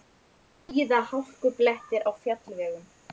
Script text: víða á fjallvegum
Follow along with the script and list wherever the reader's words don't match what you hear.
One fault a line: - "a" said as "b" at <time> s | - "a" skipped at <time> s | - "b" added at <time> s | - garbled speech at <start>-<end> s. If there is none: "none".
- "hálkublettir" added at 1.1 s